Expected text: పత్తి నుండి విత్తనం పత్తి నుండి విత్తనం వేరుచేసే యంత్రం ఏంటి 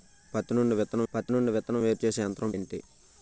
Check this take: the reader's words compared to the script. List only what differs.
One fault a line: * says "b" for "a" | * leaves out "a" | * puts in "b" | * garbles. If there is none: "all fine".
all fine